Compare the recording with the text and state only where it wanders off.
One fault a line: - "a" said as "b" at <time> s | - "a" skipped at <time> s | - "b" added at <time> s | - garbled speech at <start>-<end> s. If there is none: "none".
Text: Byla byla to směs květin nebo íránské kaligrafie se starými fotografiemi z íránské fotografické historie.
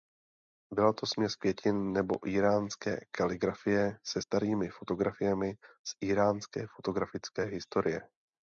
- "byla" skipped at 0.9 s